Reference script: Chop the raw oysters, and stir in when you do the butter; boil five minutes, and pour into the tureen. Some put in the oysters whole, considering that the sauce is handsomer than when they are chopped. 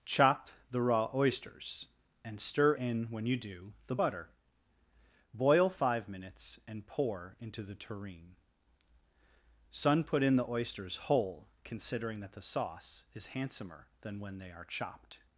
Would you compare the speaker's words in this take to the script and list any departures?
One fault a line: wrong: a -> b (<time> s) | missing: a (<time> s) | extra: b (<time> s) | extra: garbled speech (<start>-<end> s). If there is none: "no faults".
wrong: Some -> Sun (9.7 s)